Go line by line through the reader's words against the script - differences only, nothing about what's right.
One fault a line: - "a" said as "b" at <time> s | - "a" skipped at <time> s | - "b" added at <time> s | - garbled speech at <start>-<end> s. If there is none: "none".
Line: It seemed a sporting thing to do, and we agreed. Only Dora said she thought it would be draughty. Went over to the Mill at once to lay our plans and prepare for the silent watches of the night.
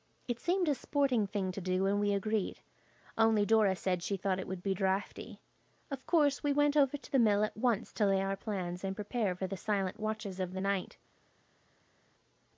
- "Of course we" added at 5.9 s